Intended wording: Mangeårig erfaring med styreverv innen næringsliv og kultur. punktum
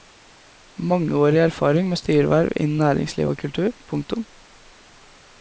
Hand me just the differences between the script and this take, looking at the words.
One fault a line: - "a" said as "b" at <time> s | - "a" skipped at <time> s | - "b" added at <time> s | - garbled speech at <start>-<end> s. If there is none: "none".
none